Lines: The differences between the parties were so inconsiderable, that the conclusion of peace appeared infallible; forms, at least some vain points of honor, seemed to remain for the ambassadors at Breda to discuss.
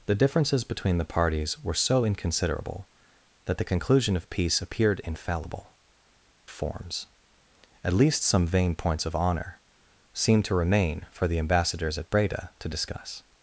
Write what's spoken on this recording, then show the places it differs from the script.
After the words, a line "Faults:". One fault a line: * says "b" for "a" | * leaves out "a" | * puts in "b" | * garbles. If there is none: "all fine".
The differences between the parties were so inconsiderable, that the conclusion of peace appeared infallible; forms, at least some vain points of honor, seemed to remain for the ambassadors at Breda to discuss.
Faults:
all fine